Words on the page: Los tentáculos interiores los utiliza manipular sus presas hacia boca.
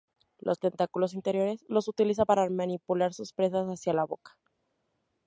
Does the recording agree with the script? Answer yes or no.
no